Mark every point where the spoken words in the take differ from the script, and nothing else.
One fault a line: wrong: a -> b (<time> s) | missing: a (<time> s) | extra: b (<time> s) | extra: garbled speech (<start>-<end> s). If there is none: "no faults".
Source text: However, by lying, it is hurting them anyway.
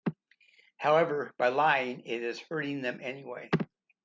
no faults